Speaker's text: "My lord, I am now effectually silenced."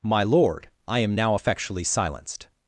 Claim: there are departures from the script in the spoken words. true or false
false